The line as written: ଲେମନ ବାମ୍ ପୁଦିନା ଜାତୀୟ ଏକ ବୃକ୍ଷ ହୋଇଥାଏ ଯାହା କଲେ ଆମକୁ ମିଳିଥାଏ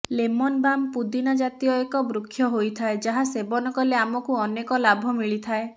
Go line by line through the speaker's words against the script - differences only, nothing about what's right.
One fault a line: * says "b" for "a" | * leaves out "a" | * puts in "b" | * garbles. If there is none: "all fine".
* puts in "ସେବନ"
* puts in "ଅନେକ ଲାଭ"